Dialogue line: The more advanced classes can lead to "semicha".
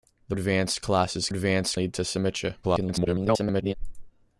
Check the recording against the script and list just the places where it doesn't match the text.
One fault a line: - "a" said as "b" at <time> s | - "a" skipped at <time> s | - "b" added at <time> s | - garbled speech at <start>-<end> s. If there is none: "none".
- "more" skipped at 0.3 s
- "can" said as "advanced" at 1.3 s
- garbled speech at 2.6-3.7 s